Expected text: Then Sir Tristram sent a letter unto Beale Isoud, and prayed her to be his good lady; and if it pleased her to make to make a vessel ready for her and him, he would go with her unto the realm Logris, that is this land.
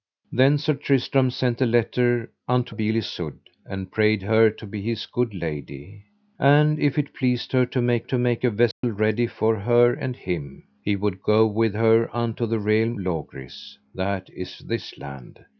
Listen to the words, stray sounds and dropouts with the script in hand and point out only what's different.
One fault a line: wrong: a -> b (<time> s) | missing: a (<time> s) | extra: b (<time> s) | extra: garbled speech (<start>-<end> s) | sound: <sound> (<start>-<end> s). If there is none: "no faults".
sound: dropout (8.7-8.8 s)